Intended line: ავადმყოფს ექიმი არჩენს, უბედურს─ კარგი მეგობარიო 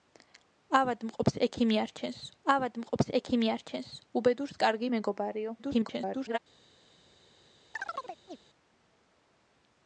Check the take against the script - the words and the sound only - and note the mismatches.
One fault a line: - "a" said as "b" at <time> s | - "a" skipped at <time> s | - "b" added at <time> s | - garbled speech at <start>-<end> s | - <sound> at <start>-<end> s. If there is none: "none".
- "ავადმყოფს ექიმი არჩენს" added at 2.5 s
- garbled speech at 5.6-6.4 s
- chirp at 7.7-8.4 s